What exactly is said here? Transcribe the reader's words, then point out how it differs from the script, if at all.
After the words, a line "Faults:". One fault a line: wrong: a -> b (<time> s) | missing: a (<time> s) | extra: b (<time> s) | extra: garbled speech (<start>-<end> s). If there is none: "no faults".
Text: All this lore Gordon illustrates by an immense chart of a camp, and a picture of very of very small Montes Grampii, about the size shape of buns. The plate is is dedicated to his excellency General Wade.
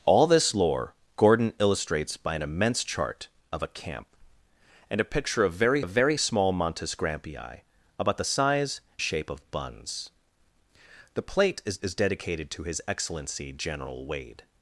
All this lore Gordon illustrates by an immense chart of a camp, and a picture of very of very small Montes Grampii, about the size shape of buns. The plate is is dedicated to his excellency General Wade.
Faults:
no faults